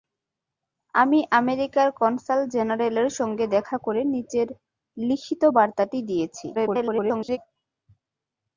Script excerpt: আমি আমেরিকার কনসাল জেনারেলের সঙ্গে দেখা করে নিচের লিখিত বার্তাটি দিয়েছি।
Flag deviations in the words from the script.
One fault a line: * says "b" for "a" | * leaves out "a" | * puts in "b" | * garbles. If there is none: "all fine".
* garbles